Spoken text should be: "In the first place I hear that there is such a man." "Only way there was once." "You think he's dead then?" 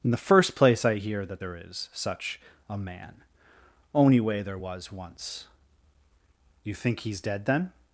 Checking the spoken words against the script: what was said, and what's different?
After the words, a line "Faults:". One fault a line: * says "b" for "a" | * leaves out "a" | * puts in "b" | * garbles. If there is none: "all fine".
"In the first place I hear that there is such a man." "Only way there was once." "You think he's dead then?"
Faults:
all fine